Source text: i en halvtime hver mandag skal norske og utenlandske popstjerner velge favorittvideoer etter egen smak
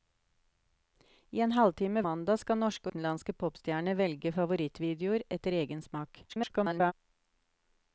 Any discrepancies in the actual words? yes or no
yes